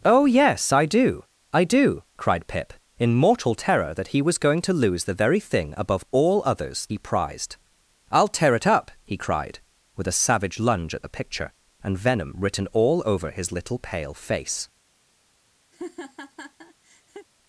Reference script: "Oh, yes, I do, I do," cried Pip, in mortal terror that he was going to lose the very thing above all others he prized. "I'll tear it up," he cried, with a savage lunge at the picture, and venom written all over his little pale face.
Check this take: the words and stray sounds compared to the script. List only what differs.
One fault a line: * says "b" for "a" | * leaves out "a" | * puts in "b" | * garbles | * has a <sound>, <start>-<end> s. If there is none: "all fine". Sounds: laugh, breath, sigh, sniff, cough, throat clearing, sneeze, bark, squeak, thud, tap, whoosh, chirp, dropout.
* has a laugh, 15.7-17.3 s